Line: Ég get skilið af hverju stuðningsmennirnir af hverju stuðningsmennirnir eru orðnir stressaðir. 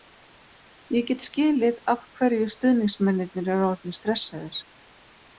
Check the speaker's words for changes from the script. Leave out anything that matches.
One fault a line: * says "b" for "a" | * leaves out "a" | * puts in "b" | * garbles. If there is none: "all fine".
* leaves out "af hverju stuðningsmennirnir"